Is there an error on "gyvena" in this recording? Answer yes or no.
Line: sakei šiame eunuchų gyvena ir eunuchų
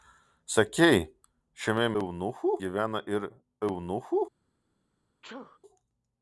no